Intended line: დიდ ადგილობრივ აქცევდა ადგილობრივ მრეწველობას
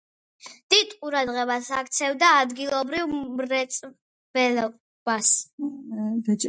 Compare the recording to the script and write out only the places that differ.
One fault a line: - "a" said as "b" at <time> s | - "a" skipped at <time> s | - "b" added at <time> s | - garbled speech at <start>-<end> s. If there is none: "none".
- "ადგილობრივ" said as "ყურადღებას" at 1.0 s